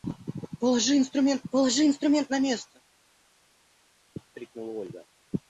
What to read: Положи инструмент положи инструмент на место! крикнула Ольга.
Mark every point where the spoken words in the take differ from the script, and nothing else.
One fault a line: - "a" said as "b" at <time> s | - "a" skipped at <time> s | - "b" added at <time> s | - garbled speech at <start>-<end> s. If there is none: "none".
none